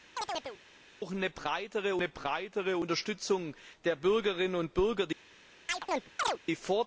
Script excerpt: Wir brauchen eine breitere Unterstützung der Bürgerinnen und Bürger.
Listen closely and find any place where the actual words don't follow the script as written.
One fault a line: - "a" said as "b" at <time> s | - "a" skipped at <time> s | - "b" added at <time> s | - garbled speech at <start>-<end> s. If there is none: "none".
- "eine breitere" added at 1.9 s